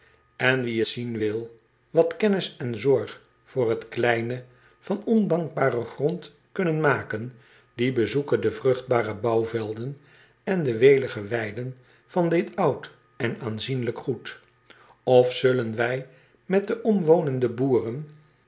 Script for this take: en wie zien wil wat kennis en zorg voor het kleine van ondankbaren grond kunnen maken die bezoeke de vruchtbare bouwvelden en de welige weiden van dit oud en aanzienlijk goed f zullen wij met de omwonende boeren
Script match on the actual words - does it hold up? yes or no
yes